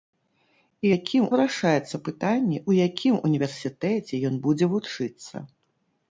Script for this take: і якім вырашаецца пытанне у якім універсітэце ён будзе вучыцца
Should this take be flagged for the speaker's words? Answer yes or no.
no